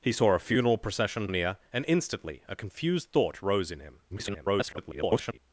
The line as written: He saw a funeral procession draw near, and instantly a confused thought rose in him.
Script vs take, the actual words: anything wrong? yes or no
yes